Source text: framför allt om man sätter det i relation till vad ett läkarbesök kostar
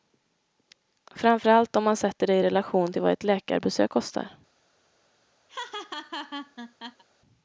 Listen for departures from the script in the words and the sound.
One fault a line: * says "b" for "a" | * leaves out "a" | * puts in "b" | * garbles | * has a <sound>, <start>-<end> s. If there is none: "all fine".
* has a laugh, 5.5-7.0 s